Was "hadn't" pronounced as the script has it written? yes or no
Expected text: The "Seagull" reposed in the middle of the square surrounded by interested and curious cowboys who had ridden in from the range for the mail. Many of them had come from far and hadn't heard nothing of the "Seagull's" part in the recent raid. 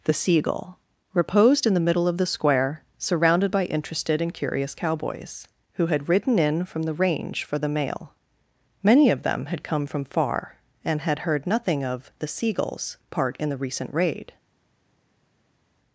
no